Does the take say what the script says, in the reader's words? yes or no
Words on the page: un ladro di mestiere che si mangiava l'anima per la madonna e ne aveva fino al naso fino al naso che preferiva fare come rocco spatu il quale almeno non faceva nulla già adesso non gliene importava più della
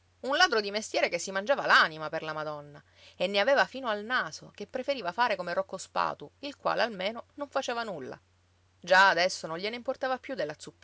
no